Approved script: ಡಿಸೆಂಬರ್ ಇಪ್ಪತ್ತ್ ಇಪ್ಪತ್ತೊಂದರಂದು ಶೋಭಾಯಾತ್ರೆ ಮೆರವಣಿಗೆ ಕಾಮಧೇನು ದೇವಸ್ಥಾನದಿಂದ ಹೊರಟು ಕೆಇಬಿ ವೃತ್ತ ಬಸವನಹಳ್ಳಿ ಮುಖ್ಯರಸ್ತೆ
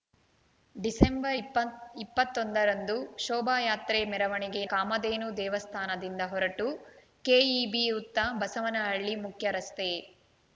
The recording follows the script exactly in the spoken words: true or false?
true